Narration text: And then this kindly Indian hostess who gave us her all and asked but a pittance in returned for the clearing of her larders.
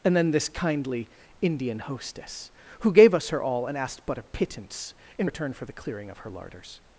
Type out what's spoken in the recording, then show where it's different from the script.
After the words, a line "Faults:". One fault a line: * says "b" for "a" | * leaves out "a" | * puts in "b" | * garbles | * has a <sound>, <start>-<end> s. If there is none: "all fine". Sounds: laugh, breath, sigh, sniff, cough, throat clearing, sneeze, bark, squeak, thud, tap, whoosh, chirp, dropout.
And then this kindly Indian hostess who gave us her all and asked but a pittance in return for the clearing of her larders.
Faults:
* says "return" for "returned"